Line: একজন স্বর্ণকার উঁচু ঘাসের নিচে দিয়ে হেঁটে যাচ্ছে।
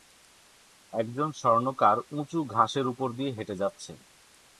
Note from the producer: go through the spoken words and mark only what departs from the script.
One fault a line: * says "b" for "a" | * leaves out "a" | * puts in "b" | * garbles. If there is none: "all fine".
* says "উপর" for "নিচে"